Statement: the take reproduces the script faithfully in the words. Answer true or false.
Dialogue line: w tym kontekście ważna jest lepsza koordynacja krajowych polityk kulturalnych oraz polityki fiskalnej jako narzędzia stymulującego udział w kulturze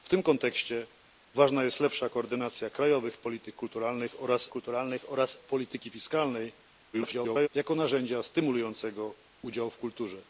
false